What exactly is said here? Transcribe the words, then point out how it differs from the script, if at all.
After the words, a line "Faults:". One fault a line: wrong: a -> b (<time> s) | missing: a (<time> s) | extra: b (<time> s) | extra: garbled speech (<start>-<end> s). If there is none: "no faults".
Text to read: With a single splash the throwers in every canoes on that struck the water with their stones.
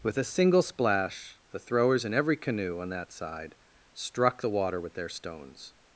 With a single splash the throwers in every canoe on that side struck the water with their stones.
Faults:
wrong: canoes -> canoe (2.4 s)
extra: side (3.1 s)